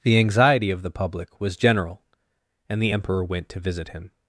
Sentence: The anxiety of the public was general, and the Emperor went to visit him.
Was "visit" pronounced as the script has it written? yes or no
yes